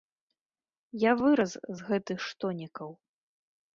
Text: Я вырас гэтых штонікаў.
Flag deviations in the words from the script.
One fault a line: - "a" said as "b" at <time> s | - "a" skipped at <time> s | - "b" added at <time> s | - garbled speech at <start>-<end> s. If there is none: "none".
- "з" added at 1.8 s